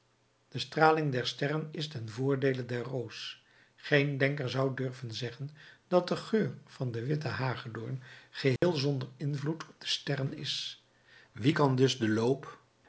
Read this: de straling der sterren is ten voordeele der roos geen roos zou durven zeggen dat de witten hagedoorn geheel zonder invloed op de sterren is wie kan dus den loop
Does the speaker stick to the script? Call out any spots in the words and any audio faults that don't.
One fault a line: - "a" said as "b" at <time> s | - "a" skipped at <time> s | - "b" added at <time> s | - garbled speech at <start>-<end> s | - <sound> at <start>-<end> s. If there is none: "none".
- "roos" said as "denker" at 4.2 s
- "geur van den" added at 6.2 s
- dropout at 8.6-8.6 s